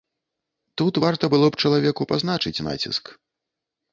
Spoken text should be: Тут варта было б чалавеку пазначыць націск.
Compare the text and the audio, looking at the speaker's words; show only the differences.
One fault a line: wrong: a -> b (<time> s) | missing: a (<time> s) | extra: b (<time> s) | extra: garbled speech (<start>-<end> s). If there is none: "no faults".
no faults